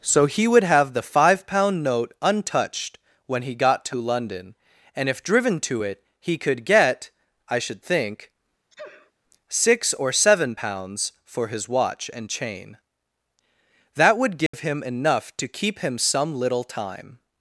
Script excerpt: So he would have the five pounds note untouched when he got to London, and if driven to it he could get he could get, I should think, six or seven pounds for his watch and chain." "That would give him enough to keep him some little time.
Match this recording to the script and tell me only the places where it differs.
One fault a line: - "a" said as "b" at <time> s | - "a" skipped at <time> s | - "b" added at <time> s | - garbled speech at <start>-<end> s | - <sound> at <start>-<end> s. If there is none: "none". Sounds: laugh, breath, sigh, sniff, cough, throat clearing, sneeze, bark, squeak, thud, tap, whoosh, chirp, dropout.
- "pounds" said as "pound" at 1.4 s
- "he could get" skipped at 7.1 s
- sneeze at 8.7-9.1 s
- dropout at 14.5-14.5 s